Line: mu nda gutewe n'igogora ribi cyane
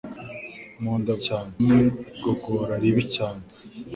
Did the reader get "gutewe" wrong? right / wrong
wrong